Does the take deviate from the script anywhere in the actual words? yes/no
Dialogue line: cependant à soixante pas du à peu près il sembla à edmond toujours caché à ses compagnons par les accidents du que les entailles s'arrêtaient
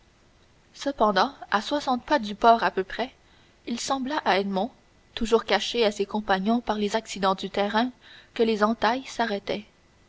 yes